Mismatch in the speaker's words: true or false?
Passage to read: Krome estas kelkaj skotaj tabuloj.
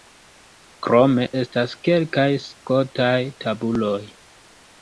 false